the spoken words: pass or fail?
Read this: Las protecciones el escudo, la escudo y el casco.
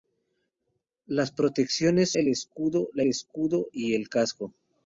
pass